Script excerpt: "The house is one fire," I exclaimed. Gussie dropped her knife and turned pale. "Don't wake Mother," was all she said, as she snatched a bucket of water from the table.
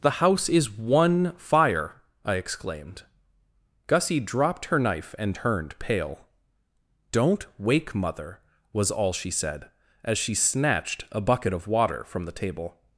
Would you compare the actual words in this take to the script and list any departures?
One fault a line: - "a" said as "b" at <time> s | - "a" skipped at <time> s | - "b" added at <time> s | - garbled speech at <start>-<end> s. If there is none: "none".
none